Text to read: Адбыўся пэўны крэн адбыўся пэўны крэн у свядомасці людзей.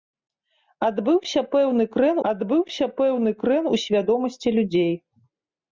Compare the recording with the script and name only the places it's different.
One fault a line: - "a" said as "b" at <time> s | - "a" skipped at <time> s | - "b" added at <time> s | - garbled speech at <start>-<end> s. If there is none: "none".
none